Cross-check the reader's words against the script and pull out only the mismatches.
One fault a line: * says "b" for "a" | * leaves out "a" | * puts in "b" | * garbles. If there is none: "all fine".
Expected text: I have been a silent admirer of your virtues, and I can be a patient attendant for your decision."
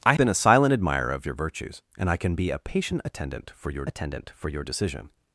* leaves out "have"
* puts in "attendant for your"